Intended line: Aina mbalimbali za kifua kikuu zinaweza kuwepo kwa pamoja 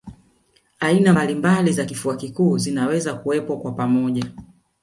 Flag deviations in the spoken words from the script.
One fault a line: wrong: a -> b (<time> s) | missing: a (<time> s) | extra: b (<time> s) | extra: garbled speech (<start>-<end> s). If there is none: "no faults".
no faults